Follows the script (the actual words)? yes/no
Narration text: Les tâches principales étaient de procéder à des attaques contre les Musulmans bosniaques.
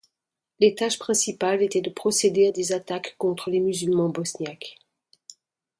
yes